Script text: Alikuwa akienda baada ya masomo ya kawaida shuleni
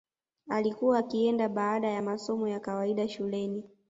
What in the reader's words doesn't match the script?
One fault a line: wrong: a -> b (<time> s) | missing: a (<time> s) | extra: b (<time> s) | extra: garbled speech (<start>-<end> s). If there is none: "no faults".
no faults